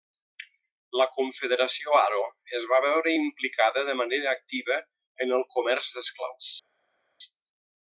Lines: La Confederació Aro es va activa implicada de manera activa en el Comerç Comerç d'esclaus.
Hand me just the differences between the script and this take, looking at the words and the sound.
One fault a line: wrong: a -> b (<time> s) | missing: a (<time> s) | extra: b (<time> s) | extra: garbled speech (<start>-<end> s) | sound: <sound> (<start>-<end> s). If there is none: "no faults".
wrong: activa -> veure (2.9 s)
missing: Comerç (5.9 s)